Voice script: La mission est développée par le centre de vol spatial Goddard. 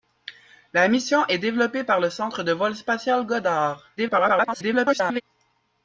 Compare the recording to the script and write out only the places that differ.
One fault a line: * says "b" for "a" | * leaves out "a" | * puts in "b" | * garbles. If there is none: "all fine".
* garbles